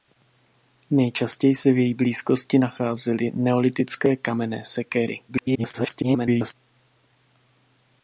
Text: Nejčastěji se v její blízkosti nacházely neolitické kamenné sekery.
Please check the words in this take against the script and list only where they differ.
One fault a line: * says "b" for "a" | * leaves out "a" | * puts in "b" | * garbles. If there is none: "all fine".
* garbles